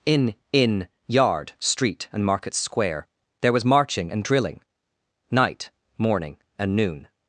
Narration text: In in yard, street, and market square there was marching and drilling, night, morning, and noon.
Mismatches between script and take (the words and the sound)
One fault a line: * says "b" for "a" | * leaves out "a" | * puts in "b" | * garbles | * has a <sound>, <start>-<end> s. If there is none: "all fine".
all fine